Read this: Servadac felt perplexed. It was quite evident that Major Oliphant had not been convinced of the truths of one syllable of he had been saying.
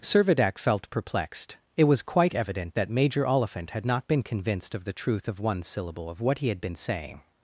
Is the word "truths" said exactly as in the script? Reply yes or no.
no